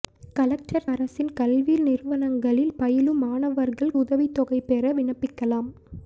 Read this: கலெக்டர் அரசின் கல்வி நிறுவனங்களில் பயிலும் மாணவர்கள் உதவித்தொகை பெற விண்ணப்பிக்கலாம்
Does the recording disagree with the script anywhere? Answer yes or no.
no